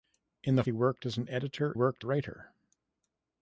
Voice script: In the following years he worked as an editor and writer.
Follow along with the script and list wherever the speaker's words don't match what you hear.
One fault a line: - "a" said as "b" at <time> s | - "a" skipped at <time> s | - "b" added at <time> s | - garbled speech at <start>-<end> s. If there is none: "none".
- "following years" skipped at 0.6 s
- "and" said as "worked" at 1.7 s